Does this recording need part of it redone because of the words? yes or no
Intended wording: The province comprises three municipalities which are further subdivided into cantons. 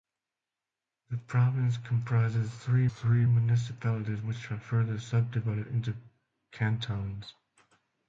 yes